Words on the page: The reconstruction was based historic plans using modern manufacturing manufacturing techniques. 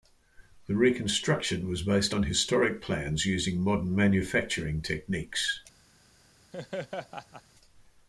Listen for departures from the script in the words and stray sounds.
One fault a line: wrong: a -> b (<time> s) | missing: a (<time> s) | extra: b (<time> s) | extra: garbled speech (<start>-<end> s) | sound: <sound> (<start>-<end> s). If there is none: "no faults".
extra: on (2.1 s)
missing: manufacturing (4.8 s)
sound: laugh (6.5-7.4 s)